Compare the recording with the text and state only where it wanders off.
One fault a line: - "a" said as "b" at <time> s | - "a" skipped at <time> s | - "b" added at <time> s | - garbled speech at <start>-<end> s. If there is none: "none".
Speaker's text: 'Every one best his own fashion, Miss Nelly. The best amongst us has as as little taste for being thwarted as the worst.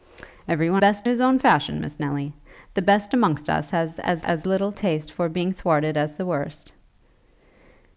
none